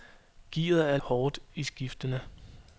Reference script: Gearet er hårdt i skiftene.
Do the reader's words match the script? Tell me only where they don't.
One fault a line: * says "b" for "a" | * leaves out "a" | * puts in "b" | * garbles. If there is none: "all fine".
all fine